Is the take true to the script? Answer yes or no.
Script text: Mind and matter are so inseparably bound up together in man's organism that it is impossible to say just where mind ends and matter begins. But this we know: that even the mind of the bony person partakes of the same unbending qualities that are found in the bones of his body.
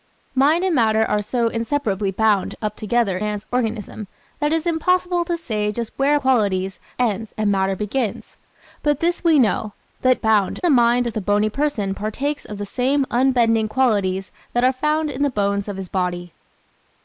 no